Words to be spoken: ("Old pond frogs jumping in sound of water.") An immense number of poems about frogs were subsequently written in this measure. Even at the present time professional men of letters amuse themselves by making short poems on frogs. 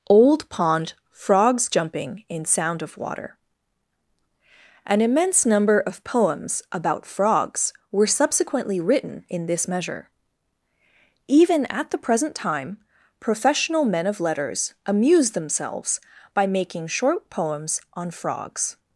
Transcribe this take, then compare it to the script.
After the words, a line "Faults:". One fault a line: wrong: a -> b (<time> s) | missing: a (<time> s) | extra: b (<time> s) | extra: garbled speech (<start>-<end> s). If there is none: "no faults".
("Old pond frogs jumping in sound of water.") An immense number of poems about frogs were subsequently written in this measure. Even at the present time professional men of letters amuse themselves by making short poems on frogs.
Faults:
no faults